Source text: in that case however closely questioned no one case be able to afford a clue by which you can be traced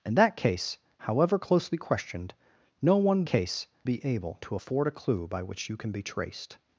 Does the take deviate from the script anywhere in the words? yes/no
no